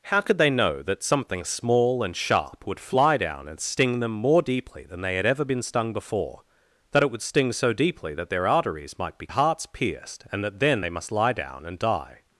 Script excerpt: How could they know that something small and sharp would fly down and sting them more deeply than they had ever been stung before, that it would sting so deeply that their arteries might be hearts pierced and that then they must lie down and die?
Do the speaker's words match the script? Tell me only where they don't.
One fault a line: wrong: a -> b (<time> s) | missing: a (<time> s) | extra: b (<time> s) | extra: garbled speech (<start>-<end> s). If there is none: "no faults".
no faults